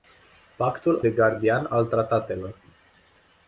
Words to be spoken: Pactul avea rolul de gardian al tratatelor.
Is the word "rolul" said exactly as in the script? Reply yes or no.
no